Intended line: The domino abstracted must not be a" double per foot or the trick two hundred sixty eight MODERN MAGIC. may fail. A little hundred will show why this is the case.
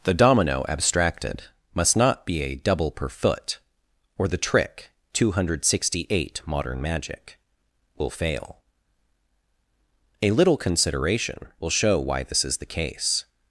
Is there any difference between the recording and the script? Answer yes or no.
yes